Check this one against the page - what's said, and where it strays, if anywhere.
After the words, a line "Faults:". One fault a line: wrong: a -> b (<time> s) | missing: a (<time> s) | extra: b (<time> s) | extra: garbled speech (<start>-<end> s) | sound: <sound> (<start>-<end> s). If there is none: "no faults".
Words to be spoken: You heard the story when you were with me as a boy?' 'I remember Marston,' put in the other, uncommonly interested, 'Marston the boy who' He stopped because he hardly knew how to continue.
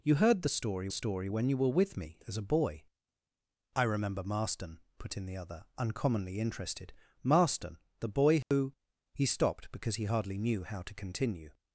You heard the story story when you were with me as a boy?' 'I remember Marston,' put in the other, uncommonly interested, 'Marston the boy who' He stopped because he hardly knew how to continue.
Faults:
extra: story (0.9 s)
sound: dropout (8.4-8.5 s)